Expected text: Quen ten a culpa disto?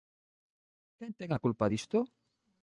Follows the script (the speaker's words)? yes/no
yes